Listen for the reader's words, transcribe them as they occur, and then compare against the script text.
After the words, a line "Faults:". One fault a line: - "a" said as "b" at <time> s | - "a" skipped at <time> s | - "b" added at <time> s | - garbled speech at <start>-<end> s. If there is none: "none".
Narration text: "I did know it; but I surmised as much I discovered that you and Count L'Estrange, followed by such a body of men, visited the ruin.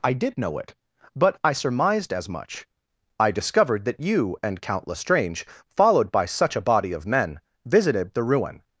"I did know it; but I surmised as much I discovered that you and Count L'Estrange, followed by such a body of men, visited the ruin.
Faults:
none